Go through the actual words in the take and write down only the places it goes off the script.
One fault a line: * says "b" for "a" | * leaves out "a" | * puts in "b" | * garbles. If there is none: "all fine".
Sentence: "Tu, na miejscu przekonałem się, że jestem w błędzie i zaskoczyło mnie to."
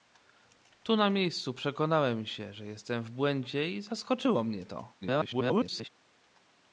* garbles